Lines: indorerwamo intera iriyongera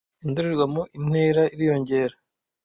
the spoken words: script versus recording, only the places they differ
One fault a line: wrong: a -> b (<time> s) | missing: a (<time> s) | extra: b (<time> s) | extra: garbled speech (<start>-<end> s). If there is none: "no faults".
no faults